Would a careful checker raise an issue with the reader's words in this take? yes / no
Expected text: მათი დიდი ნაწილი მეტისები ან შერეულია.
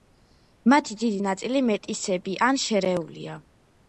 no